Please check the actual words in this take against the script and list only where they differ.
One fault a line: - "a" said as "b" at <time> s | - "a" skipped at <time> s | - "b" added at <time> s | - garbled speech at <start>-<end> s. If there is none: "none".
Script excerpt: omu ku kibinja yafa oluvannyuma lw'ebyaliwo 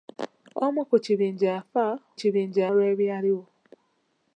- "oluvannyuma" said as "kibinja" at 2.2 s